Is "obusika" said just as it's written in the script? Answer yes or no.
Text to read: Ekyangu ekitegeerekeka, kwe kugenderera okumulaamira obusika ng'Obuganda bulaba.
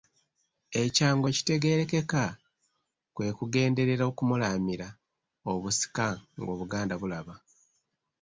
yes